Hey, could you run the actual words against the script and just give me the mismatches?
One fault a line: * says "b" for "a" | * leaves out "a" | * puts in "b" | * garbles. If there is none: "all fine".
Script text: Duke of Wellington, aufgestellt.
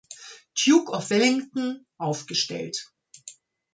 all fine